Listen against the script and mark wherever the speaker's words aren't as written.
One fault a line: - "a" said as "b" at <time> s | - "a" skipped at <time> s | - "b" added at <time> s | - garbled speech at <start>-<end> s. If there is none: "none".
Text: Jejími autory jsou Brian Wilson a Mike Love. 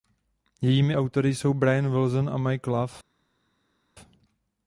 none